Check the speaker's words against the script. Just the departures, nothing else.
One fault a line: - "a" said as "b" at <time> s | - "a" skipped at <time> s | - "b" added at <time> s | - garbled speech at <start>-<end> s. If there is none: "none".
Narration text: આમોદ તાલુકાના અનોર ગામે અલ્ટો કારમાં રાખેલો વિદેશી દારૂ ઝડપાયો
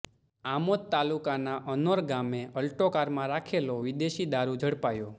none